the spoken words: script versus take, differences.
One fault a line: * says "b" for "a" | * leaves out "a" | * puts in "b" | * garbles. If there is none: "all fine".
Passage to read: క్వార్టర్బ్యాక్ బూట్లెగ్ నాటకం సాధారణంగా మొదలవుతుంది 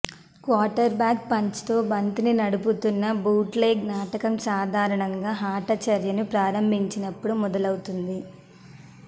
* puts in "పంచ్తో బంతిని నడుపుతున్న"
* puts in "ఆట చర్యను ప్రారంభించినప్పుడు"